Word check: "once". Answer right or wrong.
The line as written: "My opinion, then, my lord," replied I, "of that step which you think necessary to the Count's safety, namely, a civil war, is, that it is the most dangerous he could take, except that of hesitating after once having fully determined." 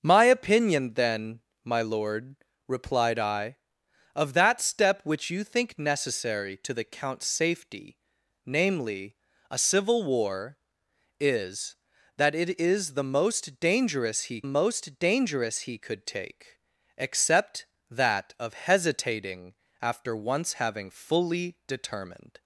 right